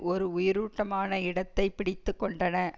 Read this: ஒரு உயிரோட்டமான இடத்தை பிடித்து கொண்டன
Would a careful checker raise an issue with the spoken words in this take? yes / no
no